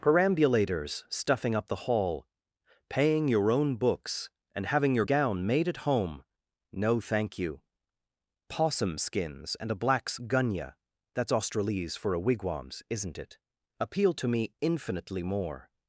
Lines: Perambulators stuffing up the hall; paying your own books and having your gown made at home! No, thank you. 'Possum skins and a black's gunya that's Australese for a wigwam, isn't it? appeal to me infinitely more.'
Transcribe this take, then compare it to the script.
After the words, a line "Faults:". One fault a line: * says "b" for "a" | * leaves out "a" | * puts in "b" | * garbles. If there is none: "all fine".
Perambulators stuffing up the hall; paying your own books and having your gown made at home! No, thank you. 'Possum skins and a black's gunya that's Australese for a wigwams, isn't it? appeal to me infinitely more.'
Faults:
* says "wigwams" for "wigwam"